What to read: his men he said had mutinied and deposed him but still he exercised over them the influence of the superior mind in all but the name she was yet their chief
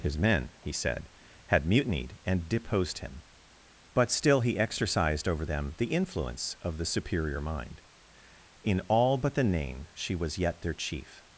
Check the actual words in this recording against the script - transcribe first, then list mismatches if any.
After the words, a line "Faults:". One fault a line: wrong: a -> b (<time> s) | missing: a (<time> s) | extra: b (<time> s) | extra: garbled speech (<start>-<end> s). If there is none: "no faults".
his men he said had mutinied and deposed him but still he exercised over them the influence of the superior mind in all but the name she was yet their chief
Faults:
no faults